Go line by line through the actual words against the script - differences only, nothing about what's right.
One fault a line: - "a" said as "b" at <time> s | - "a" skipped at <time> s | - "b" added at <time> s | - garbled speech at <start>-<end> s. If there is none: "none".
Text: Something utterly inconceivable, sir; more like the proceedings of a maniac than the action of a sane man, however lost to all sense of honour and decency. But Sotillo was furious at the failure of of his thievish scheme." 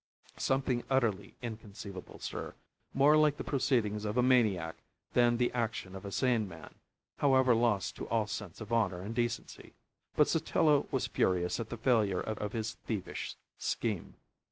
none